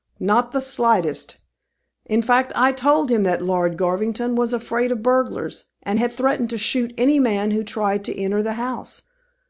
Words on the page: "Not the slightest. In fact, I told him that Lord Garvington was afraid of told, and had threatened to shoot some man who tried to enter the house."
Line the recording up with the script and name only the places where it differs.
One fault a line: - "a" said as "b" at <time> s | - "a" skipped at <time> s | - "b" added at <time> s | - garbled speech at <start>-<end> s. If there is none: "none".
- "told" said as "burglars" at 5.0 s
- "some" said as "any" at 7.0 s